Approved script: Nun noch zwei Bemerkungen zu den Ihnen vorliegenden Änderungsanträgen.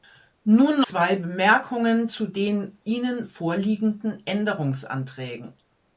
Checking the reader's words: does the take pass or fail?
fail